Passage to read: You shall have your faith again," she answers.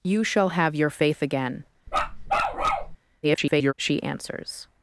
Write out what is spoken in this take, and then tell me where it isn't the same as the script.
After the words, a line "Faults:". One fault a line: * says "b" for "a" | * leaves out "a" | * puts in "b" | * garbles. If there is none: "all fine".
You shall have your faith again," [garbled] she answers.
Faults:
* garbles